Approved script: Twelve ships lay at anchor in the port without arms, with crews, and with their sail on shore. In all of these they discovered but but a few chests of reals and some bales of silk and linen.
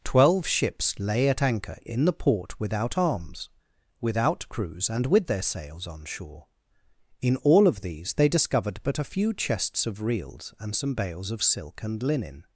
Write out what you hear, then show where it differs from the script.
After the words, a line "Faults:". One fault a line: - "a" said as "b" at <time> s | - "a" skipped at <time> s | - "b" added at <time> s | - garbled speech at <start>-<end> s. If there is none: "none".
Twelve ships lay at anchor in the port without arms, without crews, and with their sails on shore. In all of these they discovered but a few chests of reals and some bales of silk and linen.
Faults:
- "with" said as "without" at 4.0 s
- "sail" said as "sails" at 5.4 s
- "but" skipped at 9.0 s